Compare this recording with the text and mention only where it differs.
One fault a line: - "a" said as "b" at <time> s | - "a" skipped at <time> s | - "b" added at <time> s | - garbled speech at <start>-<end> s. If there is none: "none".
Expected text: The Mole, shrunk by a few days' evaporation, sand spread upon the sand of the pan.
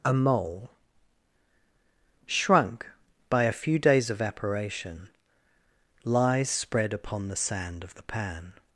- "The" said as "A" at 0.0 s
- "sand" said as "lies" at 6.0 s